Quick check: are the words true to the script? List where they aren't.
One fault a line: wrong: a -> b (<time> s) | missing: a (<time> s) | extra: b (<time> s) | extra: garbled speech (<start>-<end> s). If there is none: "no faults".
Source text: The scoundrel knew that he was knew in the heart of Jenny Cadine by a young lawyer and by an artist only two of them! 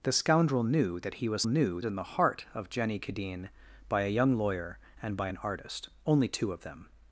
no faults